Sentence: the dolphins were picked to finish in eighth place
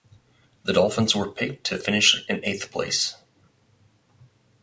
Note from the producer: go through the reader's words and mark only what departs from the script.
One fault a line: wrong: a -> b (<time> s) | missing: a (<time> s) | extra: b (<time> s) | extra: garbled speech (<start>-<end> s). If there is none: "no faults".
no faults